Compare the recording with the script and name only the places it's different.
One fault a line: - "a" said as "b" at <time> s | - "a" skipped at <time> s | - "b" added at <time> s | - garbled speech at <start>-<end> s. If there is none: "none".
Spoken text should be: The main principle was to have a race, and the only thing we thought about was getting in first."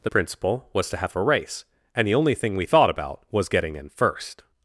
- "main" skipped at 0.1 s